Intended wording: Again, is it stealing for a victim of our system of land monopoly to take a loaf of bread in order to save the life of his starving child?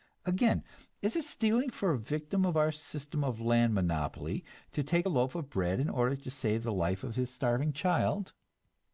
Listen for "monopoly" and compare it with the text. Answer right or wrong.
right